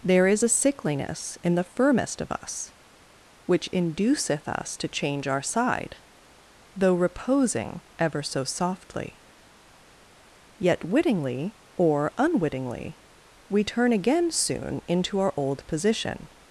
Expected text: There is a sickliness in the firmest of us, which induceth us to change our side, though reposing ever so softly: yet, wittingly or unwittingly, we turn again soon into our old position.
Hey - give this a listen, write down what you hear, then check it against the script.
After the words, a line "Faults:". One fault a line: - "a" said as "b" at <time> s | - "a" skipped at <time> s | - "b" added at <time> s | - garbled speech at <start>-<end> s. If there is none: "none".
There is a sickliness in the firmest of us, which induceth us to change our side, though reposing ever so softly: yet, wittingly or unwittingly, we turn again soon into our old position.
Faults:
none